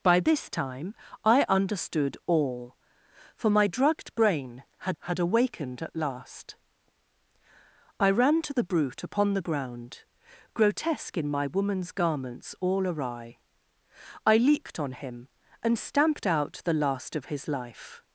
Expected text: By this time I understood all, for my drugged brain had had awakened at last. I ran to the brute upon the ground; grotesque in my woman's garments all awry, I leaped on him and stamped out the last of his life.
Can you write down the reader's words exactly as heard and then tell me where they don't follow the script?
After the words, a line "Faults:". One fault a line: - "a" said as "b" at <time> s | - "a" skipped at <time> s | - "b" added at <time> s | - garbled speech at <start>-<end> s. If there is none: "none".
By this time I understood all, for my drugged brain had had awakened at last. I ran to the brute upon the ground; grotesque in my woman's garments all awry, I leaped on him and stamped out the last of his life.
Faults:
none